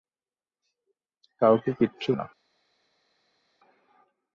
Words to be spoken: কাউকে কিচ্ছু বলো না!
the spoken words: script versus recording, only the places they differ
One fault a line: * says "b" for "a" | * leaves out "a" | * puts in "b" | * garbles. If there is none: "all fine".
* leaves out "বলো"